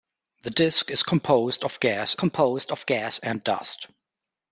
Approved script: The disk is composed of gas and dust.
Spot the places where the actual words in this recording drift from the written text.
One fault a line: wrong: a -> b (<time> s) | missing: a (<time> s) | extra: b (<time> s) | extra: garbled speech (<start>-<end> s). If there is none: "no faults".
extra: composed of gas (2.1 s)